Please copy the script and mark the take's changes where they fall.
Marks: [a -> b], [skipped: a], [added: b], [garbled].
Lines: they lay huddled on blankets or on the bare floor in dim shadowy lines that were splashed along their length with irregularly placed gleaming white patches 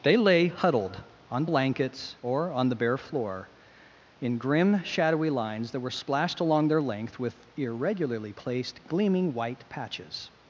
they lay huddled on blankets or on the bare floor in [dim -> grim] shadowy lines that were splashed along their length with irregularly placed gleaming white patches